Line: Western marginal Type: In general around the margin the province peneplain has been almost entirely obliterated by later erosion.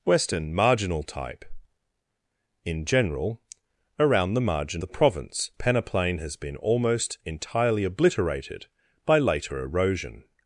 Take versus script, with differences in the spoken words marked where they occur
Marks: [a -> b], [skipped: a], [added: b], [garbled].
Western marginal Type: In general around the margin the province peneplain has been almost entirely obliterated by later erosion.